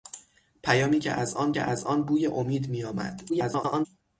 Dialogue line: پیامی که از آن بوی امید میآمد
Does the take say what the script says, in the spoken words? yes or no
no